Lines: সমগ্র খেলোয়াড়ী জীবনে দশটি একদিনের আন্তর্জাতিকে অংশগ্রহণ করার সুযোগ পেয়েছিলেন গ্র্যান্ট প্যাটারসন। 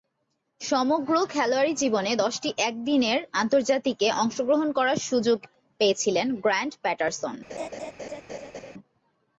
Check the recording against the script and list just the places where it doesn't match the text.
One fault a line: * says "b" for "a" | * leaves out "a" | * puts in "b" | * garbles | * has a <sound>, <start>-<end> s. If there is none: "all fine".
* has a laugh, 7.5-8.7 s